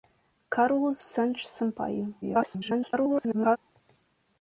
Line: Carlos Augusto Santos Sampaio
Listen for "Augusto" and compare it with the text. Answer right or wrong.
wrong